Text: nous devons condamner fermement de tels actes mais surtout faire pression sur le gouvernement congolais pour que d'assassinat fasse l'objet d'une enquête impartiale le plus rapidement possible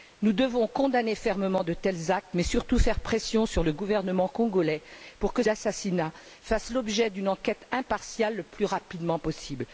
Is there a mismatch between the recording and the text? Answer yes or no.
no